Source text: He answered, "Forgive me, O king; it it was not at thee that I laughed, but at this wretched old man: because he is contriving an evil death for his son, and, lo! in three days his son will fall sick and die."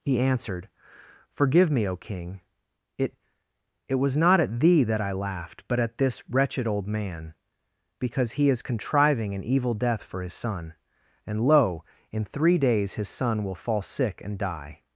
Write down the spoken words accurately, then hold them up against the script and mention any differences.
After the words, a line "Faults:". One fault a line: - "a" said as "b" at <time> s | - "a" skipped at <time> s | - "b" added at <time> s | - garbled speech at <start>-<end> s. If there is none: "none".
He answered, "Forgive me, O king; it it was not at thee that I laughed, but at this wretched old man: because he is contriving an evil death for his son, and, lo! in three days his son will fall sick and die."
Faults:
none